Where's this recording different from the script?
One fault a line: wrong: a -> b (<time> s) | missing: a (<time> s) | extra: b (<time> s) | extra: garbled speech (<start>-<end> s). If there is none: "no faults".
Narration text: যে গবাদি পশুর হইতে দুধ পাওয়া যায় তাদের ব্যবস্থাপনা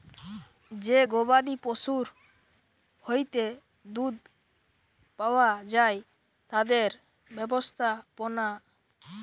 no faults